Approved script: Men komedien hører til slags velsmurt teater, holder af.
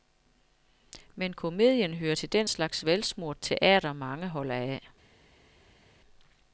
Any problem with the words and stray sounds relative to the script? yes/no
yes